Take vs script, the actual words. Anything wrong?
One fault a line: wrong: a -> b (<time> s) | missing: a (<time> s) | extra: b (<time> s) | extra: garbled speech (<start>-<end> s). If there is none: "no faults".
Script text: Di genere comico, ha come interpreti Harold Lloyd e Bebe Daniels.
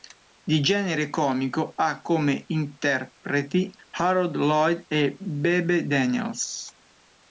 no faults